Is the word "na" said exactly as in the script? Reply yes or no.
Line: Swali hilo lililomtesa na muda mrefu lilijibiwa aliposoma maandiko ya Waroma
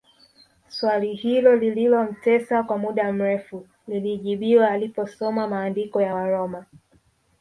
no